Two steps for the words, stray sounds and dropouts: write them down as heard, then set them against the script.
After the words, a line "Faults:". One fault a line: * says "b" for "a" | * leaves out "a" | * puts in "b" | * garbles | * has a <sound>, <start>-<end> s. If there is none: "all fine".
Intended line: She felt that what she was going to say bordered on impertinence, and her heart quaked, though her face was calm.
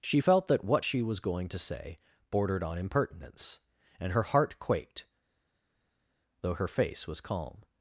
She felt that what she was going to say bordered on impertinence, and her heart quaked, though her face was calm.
Faults:
all fine